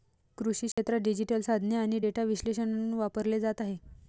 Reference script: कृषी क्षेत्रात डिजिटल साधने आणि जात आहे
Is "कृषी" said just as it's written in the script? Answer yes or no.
yes